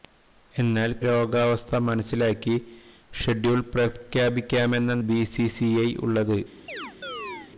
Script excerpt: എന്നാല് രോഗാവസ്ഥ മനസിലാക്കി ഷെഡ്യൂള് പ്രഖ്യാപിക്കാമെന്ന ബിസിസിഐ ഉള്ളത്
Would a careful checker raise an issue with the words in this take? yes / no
no